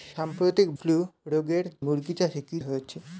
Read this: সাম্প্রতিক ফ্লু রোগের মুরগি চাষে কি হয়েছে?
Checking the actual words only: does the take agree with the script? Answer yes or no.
yes